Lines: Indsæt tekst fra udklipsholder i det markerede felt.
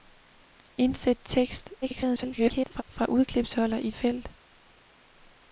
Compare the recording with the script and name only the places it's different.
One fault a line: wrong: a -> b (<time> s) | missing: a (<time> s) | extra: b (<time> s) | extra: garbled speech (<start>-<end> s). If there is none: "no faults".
extra: garbled speech (1.8-2.8 s)
missing: det markerede (3.9 s)